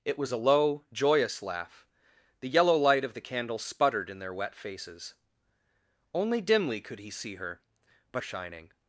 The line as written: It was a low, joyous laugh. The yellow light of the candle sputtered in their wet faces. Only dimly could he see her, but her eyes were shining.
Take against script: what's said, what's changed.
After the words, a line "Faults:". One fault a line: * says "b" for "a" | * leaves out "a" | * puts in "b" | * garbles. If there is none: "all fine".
It was a low, joyous laugh. The yellow light of the candle sputtered in their wet faces. Only dimly could he see her, but shining.
Faults:
* leaves out "her eyes were"